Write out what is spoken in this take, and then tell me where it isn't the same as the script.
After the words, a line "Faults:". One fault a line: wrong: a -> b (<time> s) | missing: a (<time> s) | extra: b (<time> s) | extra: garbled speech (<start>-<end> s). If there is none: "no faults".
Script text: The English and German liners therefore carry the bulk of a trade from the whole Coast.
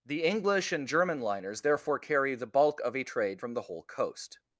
The English and German liners therefore carry the bulk of a trade from the whole Coast.
Faults:
no faults